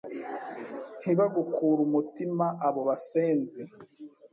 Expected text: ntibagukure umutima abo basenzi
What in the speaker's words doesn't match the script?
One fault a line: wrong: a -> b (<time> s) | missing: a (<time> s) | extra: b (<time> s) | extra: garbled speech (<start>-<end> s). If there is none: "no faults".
no faults